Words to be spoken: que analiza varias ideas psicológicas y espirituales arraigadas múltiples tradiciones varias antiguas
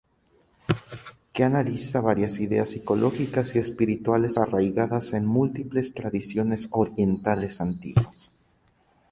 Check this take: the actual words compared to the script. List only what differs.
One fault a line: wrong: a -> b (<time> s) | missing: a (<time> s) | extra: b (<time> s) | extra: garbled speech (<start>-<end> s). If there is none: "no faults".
extra: en (5.1 s)
wrong: varias -> orientales (6.7 s)